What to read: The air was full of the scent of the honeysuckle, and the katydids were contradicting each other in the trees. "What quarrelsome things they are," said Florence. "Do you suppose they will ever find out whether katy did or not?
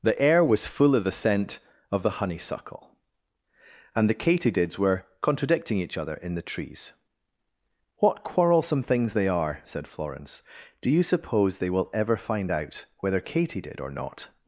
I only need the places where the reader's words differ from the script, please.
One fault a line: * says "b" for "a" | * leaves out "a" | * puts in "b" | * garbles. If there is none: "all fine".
all fine